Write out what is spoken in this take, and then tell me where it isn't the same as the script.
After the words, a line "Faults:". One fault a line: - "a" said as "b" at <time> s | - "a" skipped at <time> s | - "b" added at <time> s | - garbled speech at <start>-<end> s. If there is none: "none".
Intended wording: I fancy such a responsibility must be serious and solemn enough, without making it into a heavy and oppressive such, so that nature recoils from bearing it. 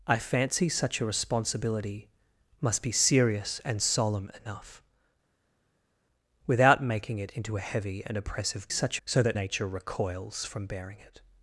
I fancy such a responsibility must be serious and solemn enough, without making it into a heavy and oppressive such, so that nature recoils from bearing it.
Faults:
none